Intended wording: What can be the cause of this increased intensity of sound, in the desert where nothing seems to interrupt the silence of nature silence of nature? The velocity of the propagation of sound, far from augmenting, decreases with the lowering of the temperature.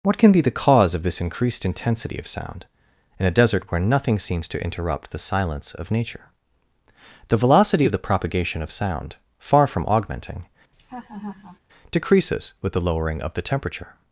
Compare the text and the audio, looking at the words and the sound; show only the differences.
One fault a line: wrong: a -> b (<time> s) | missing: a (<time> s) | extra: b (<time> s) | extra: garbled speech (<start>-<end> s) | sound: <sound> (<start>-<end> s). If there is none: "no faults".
wrong: the -> a (3.3 s)
missing: silence of nature (6.2 s)
sound: laugh (10.7-11.6 s)